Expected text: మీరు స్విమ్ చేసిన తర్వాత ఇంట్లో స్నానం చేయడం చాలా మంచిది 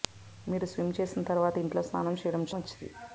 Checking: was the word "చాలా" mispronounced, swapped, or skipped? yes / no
yes